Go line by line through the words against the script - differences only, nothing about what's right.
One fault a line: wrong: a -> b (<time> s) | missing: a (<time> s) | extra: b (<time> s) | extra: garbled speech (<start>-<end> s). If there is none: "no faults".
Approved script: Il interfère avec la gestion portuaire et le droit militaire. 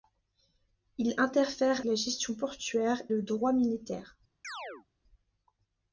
missing: avec (1.9 s)
missing: et (3.0 s)